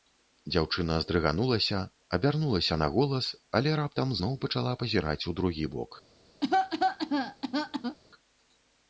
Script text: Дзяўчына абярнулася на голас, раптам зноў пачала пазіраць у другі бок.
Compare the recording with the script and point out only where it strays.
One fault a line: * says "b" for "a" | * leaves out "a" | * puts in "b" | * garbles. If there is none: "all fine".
* puts in "здрыганулася"
* puts in "але"